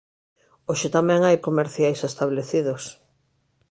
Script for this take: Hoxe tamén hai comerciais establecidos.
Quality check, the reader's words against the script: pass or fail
pass